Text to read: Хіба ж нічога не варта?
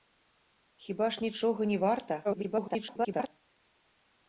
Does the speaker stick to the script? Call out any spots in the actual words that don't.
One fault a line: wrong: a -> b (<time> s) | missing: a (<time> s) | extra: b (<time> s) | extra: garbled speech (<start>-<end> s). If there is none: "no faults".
extra: garbled speech (2.2-3.3 s)